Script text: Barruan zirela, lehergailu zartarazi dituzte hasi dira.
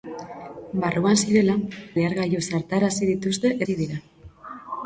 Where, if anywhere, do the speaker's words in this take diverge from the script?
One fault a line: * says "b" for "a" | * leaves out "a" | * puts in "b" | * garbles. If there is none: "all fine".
all fine